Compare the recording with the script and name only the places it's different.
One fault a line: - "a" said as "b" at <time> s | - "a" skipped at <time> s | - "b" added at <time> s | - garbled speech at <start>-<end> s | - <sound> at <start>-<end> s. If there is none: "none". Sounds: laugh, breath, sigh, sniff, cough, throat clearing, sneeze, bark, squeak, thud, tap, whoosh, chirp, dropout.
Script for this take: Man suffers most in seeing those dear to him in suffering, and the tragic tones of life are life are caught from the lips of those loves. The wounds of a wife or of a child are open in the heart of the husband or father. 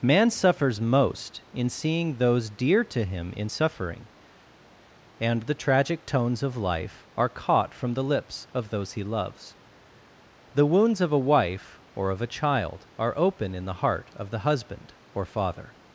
- "life are" skipped at 7.3 s
- "he" added at 8.9 s